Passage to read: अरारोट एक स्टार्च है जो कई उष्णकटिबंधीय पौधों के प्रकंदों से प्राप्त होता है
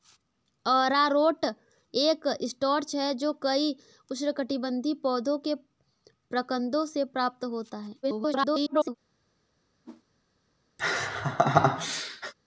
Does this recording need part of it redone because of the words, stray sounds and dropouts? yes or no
yes